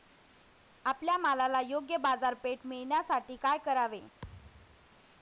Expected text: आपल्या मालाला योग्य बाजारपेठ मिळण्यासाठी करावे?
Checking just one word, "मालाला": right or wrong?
right